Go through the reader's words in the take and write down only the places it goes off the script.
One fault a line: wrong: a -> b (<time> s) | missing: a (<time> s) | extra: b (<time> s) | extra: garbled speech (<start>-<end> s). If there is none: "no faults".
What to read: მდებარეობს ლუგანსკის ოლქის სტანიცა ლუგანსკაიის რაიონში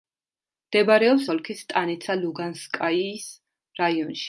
missing: ლუგანსკის (1.3 s)